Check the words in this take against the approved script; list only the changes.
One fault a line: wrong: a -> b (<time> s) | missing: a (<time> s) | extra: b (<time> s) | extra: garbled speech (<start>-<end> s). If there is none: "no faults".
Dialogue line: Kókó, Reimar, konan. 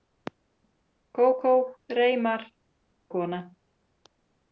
no faults